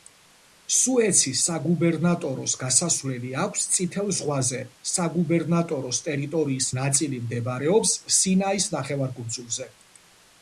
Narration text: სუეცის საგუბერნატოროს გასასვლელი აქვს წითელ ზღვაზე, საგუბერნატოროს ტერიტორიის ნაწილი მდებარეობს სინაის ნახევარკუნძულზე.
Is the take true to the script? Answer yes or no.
yes